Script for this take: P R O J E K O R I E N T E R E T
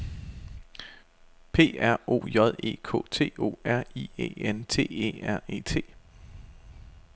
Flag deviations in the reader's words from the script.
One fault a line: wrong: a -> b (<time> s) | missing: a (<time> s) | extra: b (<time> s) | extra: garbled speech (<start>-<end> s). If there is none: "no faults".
extra: T (3.1 s)